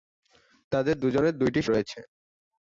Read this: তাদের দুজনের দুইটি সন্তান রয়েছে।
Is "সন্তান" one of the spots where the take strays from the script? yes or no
yes